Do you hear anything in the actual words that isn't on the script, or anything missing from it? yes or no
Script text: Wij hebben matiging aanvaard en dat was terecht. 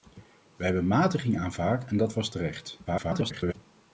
yes